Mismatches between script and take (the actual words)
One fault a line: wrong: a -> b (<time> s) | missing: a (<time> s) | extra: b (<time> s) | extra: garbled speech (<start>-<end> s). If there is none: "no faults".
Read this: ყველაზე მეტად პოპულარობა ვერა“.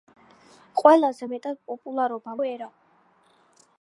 no faults